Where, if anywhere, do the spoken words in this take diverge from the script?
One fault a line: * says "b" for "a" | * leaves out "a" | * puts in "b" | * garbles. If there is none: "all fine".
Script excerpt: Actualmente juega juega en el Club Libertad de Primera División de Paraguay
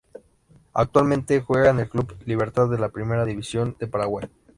* leaves out "juega"
* puts in "la"